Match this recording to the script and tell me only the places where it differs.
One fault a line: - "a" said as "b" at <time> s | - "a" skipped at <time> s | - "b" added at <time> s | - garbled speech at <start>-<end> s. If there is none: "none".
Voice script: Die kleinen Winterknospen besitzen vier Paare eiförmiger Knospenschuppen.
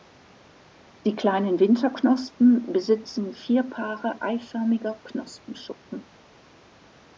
none